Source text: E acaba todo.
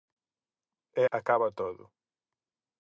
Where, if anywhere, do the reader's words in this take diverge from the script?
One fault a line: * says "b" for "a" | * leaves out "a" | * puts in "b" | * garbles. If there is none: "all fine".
all fine